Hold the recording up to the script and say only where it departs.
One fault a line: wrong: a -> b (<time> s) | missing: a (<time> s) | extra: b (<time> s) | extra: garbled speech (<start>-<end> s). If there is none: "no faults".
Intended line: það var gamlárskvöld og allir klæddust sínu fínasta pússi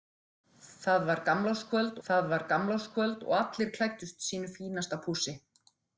extra: það var gamlárskvöld (2.1 s)